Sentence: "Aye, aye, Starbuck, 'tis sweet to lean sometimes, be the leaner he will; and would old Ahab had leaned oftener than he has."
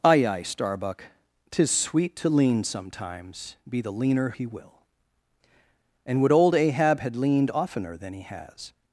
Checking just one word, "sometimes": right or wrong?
right